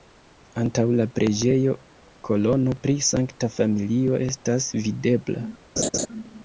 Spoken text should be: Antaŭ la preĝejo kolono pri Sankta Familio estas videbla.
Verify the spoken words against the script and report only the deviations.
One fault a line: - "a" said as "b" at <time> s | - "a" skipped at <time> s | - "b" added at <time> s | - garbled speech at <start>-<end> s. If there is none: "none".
none